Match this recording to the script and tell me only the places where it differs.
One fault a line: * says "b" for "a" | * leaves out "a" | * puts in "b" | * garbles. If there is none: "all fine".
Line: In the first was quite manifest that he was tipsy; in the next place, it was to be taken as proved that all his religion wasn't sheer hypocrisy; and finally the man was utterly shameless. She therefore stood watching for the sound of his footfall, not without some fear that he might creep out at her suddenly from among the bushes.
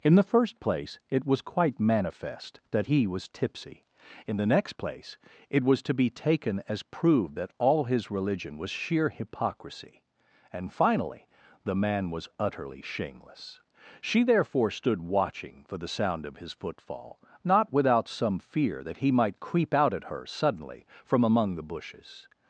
* puts in "place it"
* says "was" for "wasn't"